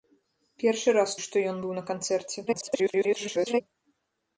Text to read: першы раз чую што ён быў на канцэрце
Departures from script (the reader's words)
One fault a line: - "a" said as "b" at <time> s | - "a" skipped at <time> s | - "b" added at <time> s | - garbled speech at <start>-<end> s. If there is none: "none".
- "чую" skipped at 1.1 s
- garbled speech at 2.5-3.6 s